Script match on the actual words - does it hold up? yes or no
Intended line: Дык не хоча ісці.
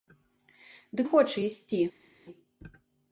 no